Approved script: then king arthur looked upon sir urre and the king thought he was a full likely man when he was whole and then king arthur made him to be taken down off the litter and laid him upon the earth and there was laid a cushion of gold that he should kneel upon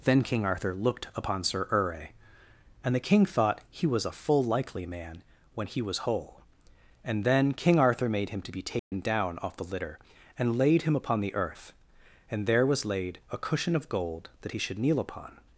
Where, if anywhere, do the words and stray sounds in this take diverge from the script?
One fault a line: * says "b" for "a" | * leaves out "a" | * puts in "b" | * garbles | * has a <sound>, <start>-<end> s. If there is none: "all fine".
* has a dropout, 8.8-8.9 s